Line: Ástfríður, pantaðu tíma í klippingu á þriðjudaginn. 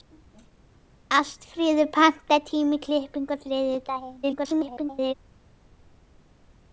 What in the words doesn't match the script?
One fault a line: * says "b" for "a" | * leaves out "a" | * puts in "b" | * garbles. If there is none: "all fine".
* garbles